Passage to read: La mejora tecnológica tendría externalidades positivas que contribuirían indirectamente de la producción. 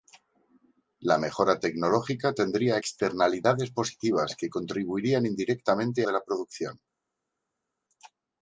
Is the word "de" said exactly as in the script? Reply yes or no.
yes